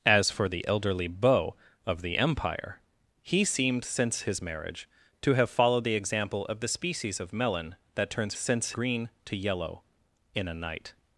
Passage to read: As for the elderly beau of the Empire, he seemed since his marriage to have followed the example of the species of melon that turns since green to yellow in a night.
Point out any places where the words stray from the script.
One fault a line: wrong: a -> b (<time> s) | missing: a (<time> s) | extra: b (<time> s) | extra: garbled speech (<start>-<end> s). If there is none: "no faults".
no faults